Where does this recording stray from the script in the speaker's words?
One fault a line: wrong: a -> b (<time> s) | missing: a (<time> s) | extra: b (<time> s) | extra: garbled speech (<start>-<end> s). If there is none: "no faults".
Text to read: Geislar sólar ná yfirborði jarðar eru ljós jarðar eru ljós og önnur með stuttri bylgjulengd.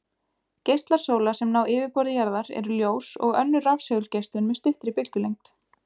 extra: sem (1.4 s)
missing: jarðar eru ljós (3.1 s)
extra: rafsegulgeislun (3.7 s)